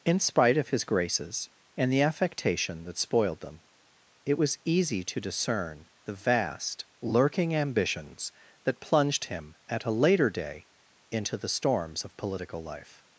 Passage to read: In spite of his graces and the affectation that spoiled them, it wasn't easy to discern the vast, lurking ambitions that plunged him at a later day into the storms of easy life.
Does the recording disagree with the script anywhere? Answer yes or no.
yes